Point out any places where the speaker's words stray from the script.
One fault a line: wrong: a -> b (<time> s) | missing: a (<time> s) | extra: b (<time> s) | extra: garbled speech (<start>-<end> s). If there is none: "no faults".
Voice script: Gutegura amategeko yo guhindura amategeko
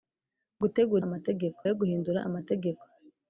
no faults